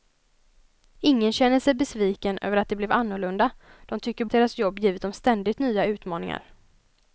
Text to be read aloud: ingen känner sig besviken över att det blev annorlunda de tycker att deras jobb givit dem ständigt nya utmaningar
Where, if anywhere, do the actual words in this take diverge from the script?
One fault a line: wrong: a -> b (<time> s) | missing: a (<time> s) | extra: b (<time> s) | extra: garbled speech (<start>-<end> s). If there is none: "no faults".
no faults